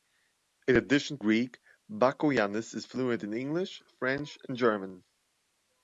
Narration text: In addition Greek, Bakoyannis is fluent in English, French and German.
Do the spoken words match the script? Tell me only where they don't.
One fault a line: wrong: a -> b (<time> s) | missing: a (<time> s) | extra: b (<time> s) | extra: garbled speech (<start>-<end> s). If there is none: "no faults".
no faults